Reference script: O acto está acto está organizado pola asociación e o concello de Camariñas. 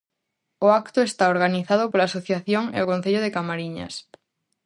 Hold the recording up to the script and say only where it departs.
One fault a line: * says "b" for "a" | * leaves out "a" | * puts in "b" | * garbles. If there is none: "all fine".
* leaves out "acto está"